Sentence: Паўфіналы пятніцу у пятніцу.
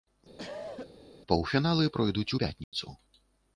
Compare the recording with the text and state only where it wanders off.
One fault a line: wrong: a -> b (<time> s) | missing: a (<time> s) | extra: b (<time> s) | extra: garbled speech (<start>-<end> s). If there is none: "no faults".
wrong: пятніцу -> пройдуць (2.0 s)